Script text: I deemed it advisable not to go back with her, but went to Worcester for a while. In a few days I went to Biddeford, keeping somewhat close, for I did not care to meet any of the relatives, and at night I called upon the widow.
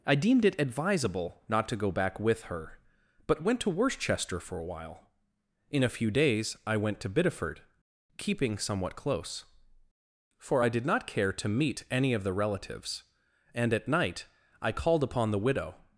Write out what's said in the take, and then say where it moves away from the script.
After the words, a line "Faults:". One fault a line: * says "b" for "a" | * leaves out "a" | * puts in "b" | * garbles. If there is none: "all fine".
I deemed it advisable not to go back with her, but went to Worcester for a while. In a few days I went to Biddeford, keeping somewhat close, for I did not care to meet any of the relatives, and at night I called upon the widow.
Faults:
all fine